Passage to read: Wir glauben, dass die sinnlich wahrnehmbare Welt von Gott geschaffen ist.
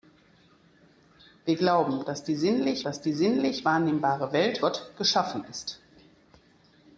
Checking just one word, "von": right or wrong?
wrong